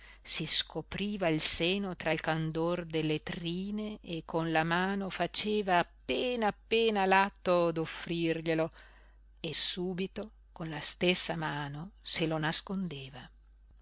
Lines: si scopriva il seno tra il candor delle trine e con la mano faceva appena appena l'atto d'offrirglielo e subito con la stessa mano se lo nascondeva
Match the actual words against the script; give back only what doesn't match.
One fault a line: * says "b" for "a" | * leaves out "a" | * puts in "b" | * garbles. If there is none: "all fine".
all fine